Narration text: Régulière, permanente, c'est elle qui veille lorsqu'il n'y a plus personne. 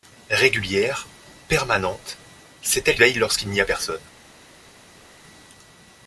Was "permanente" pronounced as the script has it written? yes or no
yes